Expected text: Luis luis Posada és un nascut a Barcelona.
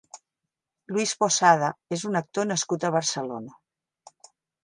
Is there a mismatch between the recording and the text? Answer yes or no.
yes